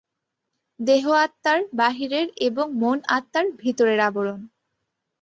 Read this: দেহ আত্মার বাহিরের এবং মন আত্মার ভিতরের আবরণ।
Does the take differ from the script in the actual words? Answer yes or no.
no